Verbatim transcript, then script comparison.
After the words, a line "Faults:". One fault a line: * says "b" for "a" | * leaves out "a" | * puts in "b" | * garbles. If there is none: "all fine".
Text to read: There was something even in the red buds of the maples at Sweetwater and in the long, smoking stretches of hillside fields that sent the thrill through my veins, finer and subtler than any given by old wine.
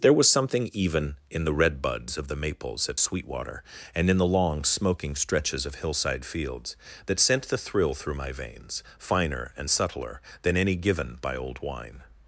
There was something even in the red buds of the maples at Sweetwater and in the long, smoking stretches of hillside fields that sent the thrill through my veins, finer and subtler than any given by old wine.
Faults:
all fine